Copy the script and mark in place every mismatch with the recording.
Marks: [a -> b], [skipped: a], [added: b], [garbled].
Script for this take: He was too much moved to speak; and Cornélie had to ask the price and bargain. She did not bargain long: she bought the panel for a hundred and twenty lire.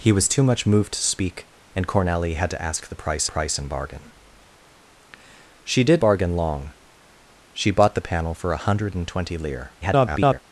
He was too much moved to speak; and Cornélie had to ask the price [added: price] and bargain. She did [skipped: not] bargain long: she bought the panel for a hundred and twenty lire. [garbled]